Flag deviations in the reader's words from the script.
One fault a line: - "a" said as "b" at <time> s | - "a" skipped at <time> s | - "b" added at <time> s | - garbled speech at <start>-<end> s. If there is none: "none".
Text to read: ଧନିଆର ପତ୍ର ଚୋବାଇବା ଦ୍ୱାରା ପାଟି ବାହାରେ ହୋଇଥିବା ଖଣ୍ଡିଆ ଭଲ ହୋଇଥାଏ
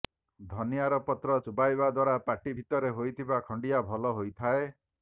- "ବାହାରେ" said as "ଭିତରେ" at 2.6 s